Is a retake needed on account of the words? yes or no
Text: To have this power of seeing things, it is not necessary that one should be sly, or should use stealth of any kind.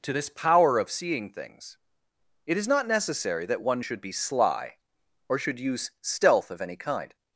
yes